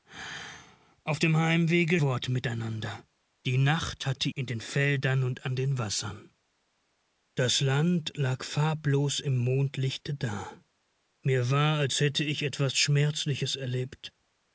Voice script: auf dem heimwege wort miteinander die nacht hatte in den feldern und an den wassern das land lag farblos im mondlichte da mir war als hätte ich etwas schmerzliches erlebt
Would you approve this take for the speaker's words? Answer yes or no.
yes